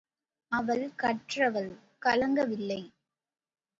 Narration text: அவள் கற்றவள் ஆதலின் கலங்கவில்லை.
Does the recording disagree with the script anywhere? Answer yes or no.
yes